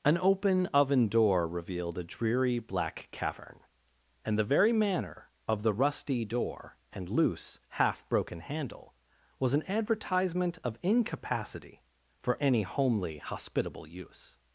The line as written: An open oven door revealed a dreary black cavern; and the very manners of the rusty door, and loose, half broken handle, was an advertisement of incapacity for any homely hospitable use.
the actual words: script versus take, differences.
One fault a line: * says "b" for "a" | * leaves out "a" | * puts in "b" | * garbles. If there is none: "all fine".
* says "manner" for "manners"